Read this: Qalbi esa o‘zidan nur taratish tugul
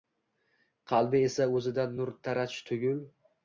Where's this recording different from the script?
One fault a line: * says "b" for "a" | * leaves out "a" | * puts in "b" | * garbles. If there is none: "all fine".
all fine